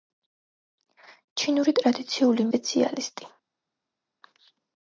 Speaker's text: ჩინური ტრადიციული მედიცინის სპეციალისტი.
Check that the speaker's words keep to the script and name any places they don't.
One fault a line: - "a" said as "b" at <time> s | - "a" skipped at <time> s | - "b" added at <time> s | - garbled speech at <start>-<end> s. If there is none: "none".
- "მედიცინის" skipped at 2.5 s